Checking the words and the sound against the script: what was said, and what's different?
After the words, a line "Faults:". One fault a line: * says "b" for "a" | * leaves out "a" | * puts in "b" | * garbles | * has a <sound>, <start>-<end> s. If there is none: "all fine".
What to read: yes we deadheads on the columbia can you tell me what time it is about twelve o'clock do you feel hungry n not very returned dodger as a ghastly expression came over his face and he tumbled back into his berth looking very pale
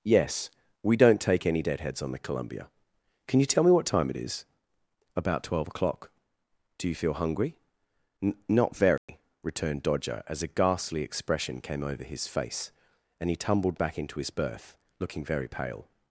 yes we don't take any deadheads on the columbia can you tell me what time it is about twelve o'clock do you feel hungry n not very returned dodger as a ghastly expression came over his face and he tumbled back into his berth looking very pale
Faults:
* puts in "don't take any"
* has a dropout, 9.0-9.1 s